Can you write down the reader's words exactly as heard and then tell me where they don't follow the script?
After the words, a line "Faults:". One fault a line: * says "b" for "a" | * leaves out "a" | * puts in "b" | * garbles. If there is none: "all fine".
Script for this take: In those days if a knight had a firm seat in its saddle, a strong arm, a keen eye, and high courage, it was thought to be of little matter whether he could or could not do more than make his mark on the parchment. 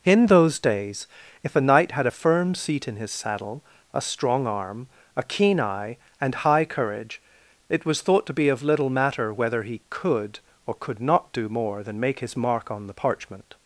In those days if a knight had a firm seat in his saddle, a strong arm, a keen eye, and high courage, it was thought to be of little matter whether he could or could not do more than make his mark on the parchment.
Faults:
* says "his" for "its"